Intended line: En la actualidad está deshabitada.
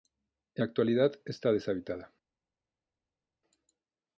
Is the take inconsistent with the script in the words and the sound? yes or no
no